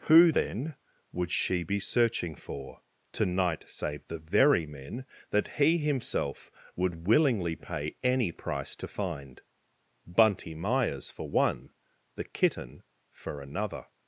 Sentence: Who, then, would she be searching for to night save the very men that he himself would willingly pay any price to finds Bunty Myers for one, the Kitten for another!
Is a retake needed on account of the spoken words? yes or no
yes